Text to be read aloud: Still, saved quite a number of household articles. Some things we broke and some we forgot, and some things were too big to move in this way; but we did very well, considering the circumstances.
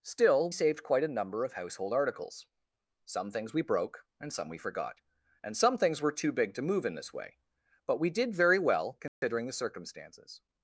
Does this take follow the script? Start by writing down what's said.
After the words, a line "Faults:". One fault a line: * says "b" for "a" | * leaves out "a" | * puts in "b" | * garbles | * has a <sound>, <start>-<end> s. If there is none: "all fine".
Still, saved quite a number of household articles. Some things we broke and some we forgot, and some things were too big to move in this way; but we did very well, considering the circumstances.
Faults:
* has a dropout, 9.1-9.2 s